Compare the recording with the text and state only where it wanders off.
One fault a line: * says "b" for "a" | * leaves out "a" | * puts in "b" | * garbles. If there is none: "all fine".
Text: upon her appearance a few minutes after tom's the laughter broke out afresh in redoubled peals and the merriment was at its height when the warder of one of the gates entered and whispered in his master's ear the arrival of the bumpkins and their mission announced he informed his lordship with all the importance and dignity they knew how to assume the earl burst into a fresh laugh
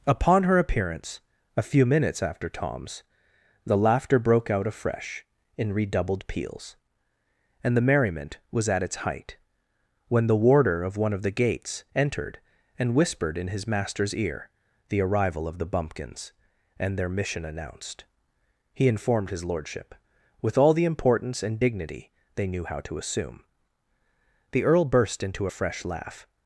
all fine